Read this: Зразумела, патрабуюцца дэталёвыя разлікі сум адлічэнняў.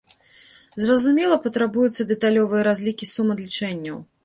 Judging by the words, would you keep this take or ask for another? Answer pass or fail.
pass